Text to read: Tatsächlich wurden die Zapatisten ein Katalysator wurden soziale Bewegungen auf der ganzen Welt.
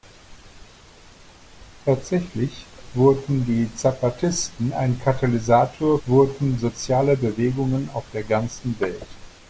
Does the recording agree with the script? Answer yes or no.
yes